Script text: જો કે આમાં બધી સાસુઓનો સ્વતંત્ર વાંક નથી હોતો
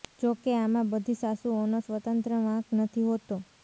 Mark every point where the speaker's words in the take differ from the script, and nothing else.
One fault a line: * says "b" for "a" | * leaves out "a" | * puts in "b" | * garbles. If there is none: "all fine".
all fine